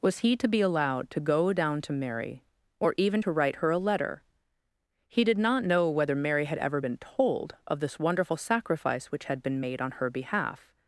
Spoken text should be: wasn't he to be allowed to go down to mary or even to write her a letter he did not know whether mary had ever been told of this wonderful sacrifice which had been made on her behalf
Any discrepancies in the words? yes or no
yes